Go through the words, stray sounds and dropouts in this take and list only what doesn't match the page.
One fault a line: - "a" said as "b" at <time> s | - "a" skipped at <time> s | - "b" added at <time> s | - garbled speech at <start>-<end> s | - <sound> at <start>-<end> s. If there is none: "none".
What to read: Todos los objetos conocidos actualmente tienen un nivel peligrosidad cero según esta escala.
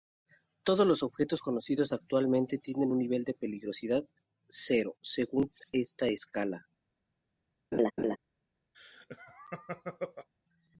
- "de" added at 3.2 s
- laugh at 7.7-8.2 s
- laugh at 8.7-10.3 s